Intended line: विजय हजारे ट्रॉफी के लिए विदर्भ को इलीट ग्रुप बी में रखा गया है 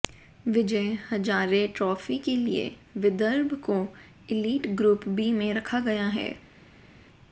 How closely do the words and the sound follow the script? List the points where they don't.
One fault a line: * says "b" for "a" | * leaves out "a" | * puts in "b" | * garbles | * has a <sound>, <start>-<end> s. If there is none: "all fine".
all fine